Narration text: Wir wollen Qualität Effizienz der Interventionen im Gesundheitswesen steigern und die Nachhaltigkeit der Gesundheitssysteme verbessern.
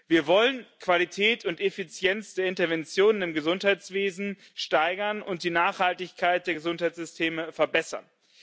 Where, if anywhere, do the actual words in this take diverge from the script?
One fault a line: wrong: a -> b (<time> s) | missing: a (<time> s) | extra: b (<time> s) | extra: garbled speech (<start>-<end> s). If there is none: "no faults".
extra: und (1.4 s)